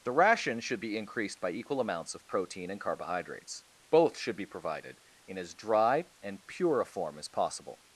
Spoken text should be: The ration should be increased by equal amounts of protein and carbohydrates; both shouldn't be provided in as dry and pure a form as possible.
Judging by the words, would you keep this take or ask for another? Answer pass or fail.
fail